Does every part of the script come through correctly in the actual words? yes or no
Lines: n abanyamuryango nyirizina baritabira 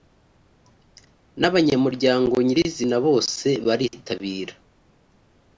no